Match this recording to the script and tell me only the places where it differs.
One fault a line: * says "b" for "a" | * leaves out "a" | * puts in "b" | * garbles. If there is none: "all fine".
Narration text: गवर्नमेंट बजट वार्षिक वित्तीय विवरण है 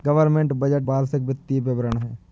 all fine